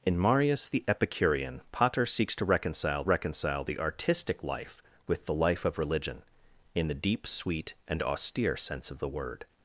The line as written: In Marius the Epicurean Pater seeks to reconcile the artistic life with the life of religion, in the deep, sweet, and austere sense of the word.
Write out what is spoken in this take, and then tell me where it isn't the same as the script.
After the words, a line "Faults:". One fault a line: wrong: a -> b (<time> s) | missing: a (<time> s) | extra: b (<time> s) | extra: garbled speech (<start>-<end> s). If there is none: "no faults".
In Marius the Epicurean Pater seeks to reconcile reconcile the artistic life with the life of religion, in the deep, sweet, and austere sense of the word.
Faults:
extra: reconcile (3.0 s)